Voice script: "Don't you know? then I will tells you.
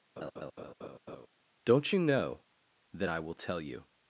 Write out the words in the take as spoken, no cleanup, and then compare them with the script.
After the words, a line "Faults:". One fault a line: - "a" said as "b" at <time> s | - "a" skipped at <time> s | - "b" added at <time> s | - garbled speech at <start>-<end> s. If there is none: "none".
"Don't you know? then I will tell you.
Faults:
- "tells" said as "tell" at 3.3 s